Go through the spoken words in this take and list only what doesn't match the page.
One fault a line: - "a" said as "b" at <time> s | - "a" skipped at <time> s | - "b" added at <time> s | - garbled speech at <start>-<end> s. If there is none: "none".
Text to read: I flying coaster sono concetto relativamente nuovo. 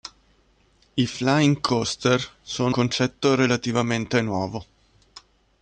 none